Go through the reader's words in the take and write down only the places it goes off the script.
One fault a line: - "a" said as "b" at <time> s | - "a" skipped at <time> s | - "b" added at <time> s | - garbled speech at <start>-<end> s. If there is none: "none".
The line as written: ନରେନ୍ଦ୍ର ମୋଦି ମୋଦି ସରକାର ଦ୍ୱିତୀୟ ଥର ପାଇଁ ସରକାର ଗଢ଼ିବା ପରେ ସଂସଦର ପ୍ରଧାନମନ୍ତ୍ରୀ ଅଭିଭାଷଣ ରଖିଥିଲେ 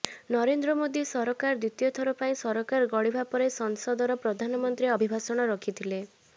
- "ମୋଦି" skipped at 1.0 s